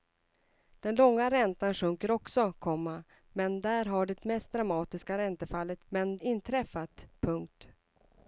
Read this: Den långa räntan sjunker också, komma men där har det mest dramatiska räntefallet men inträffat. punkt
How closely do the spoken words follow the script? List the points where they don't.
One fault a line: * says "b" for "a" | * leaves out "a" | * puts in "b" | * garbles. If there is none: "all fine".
all fine